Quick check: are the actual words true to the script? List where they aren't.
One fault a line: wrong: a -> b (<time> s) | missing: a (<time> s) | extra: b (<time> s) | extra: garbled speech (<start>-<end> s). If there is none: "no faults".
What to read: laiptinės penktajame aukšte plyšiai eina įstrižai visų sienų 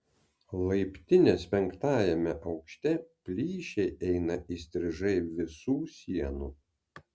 no faults